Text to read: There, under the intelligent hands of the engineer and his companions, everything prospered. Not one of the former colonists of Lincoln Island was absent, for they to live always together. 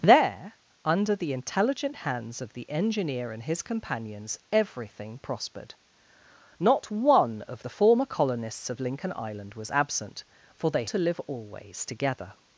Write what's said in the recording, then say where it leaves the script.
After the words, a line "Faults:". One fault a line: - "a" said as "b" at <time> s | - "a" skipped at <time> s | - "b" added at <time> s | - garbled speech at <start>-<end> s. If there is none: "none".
There, under the intelligent hands of the engineer and his companions, everything prospered. Not one of the former colonists of Lincoln Island was absent, for they to live always together.
Faults:
none